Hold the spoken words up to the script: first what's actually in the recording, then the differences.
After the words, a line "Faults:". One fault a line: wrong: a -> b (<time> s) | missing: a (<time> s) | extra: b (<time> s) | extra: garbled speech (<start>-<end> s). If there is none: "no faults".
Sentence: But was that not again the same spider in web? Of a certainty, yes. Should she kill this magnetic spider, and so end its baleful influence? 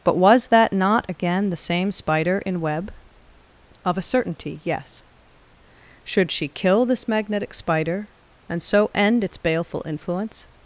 But was that not again the same spider in web? Of a certainty, yes. Should she kill this magnetic spider, and so end its baleful influence?
Faults:
no faults